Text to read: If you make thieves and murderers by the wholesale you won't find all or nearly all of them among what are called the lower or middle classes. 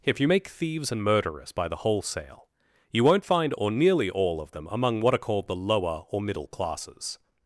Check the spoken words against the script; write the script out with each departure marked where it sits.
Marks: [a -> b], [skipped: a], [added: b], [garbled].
If you make thieves and murderers by the wholesale you won't find [skipped: all] or nearly all of them among what are called the lower or middle classes.